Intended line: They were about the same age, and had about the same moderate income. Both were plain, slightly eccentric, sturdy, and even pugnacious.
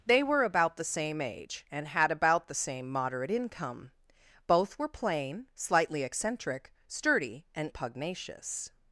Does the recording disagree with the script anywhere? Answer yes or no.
yes